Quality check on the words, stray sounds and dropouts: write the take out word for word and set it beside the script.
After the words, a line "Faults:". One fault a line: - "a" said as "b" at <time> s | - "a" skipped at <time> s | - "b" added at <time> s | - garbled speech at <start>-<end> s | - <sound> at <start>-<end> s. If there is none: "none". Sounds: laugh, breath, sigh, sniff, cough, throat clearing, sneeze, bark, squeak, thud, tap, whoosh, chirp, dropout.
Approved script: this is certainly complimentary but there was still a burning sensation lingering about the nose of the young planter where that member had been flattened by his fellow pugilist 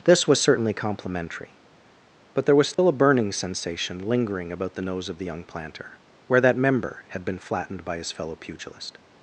this was certainly complimentary but there was still a burning sensation lingering about the nose of the young planter where that member had been flattened by his fellow pugilist
Faults:
- "is" said as "was" at 0.3 s
- dropout at 2.7-2.8 s